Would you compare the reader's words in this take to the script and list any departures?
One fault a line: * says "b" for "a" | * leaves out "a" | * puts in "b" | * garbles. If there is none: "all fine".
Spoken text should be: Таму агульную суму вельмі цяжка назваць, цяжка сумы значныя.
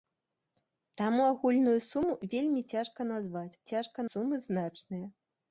all fine